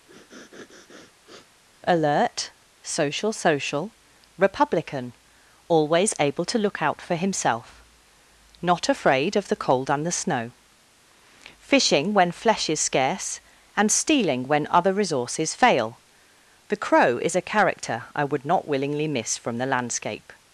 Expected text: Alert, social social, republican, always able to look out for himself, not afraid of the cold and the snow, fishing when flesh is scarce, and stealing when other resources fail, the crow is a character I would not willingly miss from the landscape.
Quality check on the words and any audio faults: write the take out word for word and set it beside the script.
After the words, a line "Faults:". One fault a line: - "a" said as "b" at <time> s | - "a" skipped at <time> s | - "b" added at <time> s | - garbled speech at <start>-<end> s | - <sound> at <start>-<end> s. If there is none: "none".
Alert, social social, republican, always able to look out for himself, not afraid of the cold and the snow, fishing when flesh is scarce, and stealing when other resources fail, the crow is a character I would not willingly miss from the landscape.
Faults:
- sniff at 0.1-1.6 s